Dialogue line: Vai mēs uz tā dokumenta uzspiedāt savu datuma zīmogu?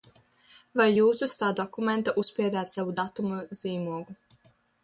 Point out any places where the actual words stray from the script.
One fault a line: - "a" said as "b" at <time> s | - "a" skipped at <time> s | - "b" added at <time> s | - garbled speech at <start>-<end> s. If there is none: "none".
- "mēs" said as "jūs" at 1.0 s